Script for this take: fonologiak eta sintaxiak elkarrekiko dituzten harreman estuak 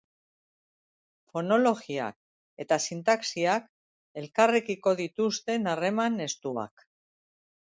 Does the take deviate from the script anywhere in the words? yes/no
no